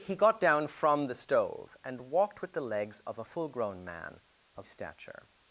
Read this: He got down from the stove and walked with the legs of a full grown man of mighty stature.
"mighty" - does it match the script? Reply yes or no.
no